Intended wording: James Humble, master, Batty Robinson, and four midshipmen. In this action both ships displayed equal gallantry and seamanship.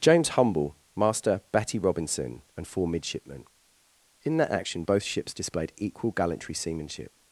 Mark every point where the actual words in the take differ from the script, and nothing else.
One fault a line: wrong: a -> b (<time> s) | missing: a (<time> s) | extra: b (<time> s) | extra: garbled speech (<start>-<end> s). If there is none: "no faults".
wrong: this -> that (4.4 s)
missing: and (6.5 s)